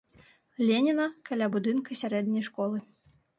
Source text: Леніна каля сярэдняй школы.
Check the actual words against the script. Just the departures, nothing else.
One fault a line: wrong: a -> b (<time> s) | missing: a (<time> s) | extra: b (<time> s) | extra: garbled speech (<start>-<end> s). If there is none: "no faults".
extra: будынка (1.6 s)